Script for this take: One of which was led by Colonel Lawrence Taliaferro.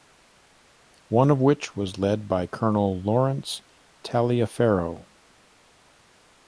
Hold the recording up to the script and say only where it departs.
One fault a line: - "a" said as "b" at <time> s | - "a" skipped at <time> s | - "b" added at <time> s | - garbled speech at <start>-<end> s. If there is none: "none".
none